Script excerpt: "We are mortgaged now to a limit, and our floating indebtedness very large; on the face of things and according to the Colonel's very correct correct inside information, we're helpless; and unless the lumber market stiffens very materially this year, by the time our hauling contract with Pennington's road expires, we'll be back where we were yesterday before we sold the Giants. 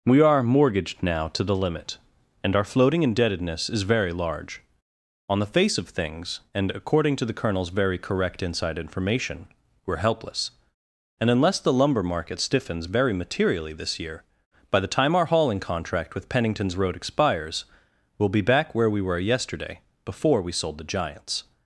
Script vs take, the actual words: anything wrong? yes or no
yes